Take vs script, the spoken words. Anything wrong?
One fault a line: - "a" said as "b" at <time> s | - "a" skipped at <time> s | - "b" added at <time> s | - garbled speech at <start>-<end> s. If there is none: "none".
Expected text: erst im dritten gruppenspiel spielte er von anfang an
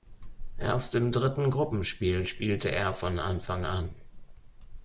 none